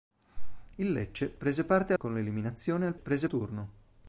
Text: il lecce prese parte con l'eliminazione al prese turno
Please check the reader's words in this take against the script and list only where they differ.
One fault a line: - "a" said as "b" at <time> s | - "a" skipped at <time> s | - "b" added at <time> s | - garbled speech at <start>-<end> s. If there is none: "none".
none